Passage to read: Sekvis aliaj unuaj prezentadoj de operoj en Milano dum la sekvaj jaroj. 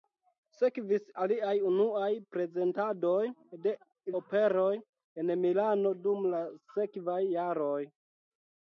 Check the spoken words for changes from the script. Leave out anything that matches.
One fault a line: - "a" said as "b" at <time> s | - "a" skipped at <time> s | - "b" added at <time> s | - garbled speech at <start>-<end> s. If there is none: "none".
none